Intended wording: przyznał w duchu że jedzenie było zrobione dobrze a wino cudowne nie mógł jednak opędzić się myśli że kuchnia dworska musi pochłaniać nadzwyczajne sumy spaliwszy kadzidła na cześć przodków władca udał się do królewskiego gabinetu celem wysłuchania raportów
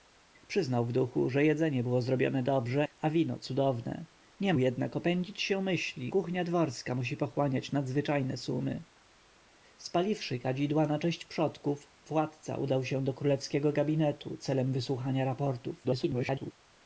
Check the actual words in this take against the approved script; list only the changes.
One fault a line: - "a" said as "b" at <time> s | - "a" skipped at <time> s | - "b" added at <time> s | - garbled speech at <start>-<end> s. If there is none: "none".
- "mógł" skipped at 4.5 s
- "że" skipped at 6.1 s
- garbled speech at 15.8-16.5 s